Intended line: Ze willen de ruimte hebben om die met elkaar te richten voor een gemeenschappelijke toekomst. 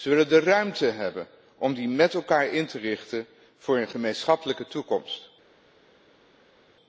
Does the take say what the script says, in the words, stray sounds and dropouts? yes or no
no